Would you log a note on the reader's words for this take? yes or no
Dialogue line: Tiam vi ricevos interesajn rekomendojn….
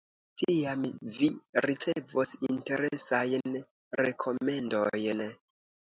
no